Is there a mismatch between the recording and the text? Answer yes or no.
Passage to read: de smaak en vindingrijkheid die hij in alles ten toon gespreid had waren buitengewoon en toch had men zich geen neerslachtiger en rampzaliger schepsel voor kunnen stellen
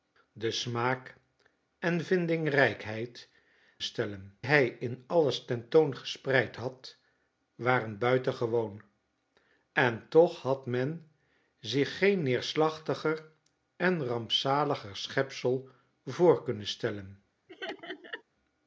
yes